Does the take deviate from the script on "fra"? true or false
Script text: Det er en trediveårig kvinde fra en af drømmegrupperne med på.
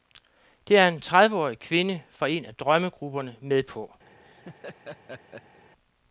false